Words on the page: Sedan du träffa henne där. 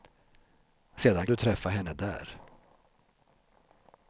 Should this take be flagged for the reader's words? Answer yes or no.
no